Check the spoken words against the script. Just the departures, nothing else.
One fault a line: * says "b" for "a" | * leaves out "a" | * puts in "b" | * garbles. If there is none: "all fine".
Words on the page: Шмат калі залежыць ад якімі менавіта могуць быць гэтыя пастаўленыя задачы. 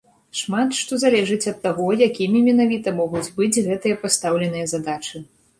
* says "што" for "калі"
* puts in "таго"